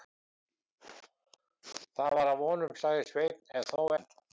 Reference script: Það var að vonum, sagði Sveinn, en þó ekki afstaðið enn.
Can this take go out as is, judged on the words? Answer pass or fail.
fail